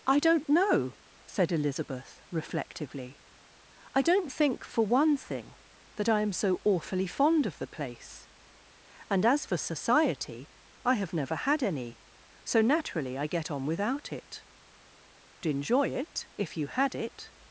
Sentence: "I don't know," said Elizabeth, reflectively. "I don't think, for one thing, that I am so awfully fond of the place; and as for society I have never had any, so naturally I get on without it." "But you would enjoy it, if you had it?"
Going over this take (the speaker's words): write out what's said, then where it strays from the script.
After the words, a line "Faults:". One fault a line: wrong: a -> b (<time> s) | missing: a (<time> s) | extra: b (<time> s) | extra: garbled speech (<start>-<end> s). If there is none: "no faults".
"I don't know," said Elizabeth, reflectively. "I don't think, for one thing, that I am so awfully fond of the place; and as for society I have never had any, so naturally I get on without it." "Enjoy it, if you had it?"
Faults:
missing: But you would (14.5 s)